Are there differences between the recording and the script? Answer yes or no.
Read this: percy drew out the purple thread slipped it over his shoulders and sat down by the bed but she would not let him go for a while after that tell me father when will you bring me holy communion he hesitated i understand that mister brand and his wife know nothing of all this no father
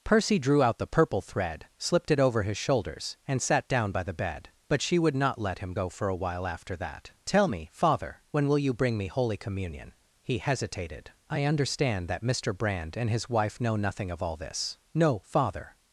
no